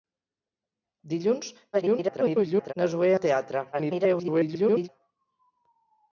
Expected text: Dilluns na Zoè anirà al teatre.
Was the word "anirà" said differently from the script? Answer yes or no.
yes